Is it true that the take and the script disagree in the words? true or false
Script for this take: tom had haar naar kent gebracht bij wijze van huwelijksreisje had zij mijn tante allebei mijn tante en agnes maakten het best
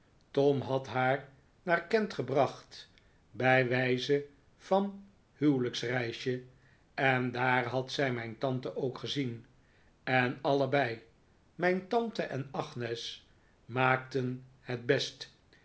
true